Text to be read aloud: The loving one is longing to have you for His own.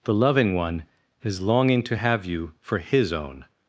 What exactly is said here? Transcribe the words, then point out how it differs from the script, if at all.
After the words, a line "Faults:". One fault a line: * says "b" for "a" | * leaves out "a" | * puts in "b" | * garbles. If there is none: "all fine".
The loving one is longing to have you for His own.
Faults:
all fine